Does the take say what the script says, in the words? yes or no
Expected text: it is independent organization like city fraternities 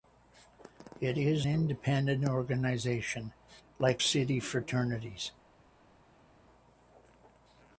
yes